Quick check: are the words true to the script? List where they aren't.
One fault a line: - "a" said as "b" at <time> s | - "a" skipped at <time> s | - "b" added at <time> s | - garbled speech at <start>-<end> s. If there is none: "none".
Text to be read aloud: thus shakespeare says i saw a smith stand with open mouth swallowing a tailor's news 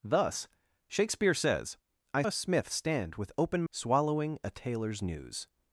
- "saw" skipped at 2.2 s
- "mouth" skipped at 3.6 s